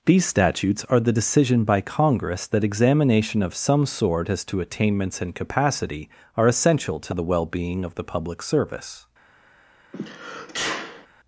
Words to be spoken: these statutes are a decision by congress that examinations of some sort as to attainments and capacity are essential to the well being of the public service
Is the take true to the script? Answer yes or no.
no